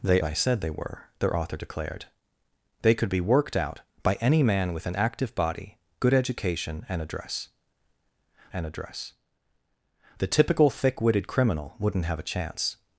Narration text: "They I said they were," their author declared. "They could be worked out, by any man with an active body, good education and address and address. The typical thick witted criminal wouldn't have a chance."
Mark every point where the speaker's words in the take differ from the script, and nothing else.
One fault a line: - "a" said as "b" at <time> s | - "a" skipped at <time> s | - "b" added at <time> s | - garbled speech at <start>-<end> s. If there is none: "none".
none